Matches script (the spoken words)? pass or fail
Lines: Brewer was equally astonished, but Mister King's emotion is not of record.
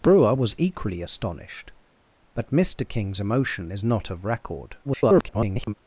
fail